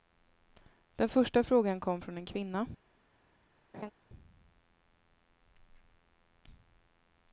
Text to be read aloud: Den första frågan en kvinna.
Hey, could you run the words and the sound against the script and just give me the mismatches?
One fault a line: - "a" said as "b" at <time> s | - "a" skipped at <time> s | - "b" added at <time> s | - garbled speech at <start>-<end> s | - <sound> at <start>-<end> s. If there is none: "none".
- "kom från" added at 1.8 s
- laugh at 3.7-3.9 s